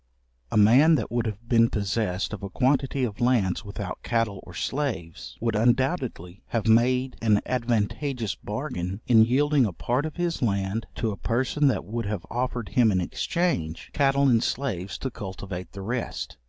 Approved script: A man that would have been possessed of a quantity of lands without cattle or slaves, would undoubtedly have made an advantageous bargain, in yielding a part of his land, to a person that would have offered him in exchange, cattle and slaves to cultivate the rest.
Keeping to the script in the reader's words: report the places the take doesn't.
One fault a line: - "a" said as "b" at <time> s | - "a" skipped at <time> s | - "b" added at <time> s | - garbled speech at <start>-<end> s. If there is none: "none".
none